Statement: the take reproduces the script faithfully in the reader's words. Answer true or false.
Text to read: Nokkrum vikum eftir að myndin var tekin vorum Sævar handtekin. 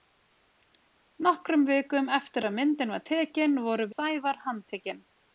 true